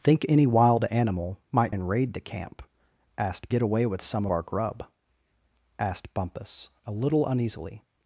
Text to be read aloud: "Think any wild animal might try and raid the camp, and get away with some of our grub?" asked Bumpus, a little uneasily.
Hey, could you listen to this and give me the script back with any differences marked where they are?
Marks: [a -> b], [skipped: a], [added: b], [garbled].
"Think any wild animal might [skipped: try] and raid the camp, [and -> asked] get away with some [skipped: of] our grub?" asked Bumpus, a little uneasily.